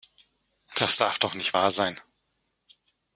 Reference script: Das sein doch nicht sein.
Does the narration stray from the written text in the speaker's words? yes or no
yes